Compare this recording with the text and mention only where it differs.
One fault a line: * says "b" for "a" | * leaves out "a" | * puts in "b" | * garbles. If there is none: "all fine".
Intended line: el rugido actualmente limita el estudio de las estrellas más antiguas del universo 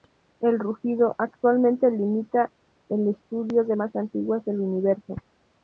* leaves out "las estrellas"